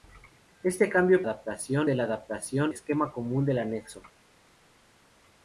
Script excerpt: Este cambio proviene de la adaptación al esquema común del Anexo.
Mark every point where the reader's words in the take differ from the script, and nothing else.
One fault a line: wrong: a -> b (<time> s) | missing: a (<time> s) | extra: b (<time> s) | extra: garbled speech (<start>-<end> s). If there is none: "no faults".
wrong: proviene -> adaptación (1.2 s)
missing: al (2.7 s)